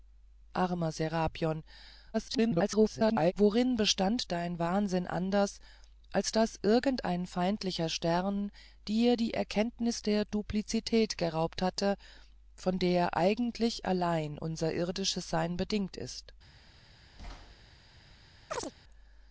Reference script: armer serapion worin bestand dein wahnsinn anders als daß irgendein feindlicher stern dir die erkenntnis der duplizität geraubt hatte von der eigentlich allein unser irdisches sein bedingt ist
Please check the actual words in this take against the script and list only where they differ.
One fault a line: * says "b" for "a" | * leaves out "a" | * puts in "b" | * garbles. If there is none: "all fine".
* garbles